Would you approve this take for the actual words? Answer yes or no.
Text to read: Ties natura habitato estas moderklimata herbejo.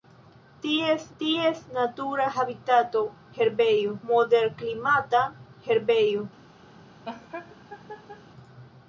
no